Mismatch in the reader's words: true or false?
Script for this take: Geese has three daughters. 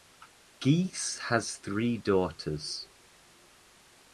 false